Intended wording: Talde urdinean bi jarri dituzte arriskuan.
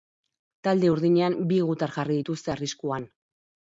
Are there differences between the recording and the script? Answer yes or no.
yes